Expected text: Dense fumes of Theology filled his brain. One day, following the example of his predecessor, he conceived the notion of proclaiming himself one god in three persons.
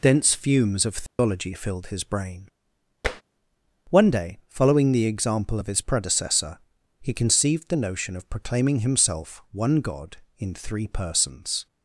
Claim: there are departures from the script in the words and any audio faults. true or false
true